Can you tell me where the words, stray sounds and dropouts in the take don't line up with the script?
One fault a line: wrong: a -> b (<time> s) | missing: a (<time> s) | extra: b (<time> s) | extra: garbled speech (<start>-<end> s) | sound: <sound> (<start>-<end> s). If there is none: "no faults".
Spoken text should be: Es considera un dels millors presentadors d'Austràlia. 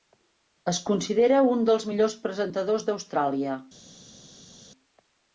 no faults